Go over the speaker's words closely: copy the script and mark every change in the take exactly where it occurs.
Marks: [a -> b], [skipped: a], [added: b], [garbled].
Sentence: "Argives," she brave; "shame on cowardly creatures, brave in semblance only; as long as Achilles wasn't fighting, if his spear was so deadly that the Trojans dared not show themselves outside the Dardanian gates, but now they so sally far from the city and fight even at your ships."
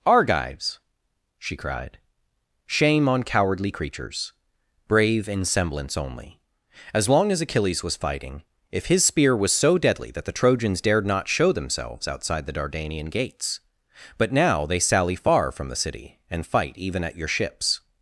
"Argives," she [brave; -> cried] "shame on cowardly creatures, brave in semblance only; as long as Achilles [wasn't -> was] fighting, if his spear was so deadly that the Trojans dared not show themselves outside the Dardanian gates, but now they [skipped: so] sally far from the city and fight even at your ships."